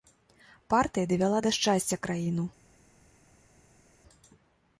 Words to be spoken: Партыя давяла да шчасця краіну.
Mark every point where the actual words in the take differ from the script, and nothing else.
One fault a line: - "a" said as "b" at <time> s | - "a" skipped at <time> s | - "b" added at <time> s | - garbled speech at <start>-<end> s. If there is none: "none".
none